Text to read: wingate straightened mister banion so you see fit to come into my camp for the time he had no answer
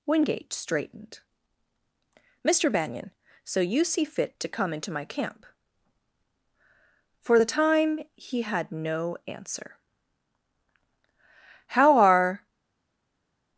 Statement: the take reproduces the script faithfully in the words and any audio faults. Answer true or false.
false